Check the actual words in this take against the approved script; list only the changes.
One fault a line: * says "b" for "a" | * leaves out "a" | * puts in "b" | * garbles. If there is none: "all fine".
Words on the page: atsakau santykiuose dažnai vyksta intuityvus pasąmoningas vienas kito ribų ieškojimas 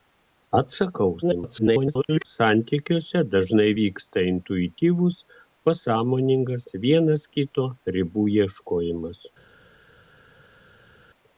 * garbles